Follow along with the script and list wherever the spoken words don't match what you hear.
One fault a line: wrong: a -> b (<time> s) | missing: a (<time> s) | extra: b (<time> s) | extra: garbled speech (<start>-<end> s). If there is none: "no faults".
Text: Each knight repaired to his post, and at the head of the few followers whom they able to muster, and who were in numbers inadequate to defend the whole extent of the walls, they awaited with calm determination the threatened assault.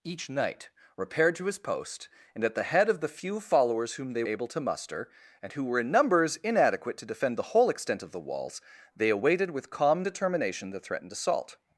no faults